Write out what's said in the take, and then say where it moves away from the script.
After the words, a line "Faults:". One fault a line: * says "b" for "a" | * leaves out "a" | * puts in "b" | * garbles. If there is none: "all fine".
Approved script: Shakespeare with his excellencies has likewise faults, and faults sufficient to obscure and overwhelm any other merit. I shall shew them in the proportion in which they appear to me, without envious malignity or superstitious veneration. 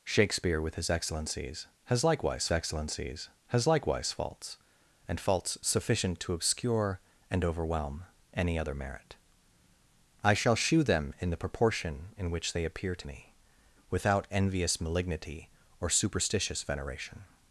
Shakespeare with his excellencies has likewise excellencies has likewise faults, and faults sufficient to obscure and overwhelm any other merit. I shall shew them in the proportion in which they appear to me, without envious malignity or superstitious veneration.
Faults:
* puts in "excellencies has likewise"